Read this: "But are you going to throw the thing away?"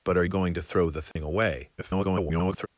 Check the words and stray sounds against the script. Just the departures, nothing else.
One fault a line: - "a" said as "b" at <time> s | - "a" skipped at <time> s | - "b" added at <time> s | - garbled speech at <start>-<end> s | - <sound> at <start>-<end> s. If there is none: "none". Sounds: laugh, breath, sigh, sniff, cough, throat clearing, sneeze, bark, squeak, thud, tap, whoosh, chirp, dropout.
- "you" skipped at 0.2 s
- dropout at 1.1-1.2 s
- garbled speech at 1.8-2.7 s